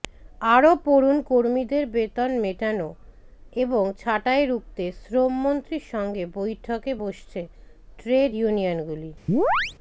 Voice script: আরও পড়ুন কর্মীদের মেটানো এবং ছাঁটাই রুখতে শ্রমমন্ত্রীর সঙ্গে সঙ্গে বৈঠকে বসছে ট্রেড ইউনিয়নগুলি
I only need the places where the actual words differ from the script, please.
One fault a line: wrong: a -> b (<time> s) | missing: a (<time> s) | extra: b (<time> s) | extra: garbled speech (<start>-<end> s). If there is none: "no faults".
extra: বেতন (1.9 s)
missing: সঙ্গে (6.2 s)